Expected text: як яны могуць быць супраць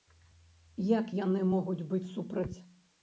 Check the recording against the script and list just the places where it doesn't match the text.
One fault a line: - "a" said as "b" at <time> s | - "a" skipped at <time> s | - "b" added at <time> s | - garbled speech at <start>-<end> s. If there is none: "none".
none